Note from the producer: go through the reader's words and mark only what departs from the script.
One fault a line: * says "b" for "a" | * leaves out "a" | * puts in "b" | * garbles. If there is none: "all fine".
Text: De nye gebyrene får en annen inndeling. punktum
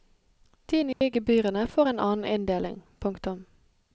all fine